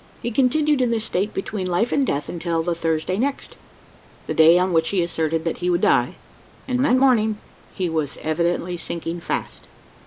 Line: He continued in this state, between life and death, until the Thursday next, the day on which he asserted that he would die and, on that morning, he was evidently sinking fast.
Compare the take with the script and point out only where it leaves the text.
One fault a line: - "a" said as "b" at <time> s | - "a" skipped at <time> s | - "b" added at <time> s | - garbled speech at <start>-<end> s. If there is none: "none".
- "on" skipped at 6.8 s